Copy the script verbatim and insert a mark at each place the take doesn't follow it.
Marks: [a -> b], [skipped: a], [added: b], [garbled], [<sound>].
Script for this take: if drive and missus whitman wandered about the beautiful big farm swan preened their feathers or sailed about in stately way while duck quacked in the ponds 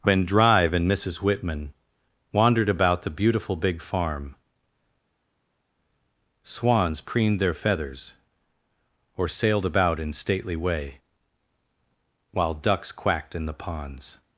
[if -> when] drive and missus whitman wandered about the beautiful big farm [swan -> swans] preened their feathers or sailed about in stately way while [duck -> ducks] quacked in the ponds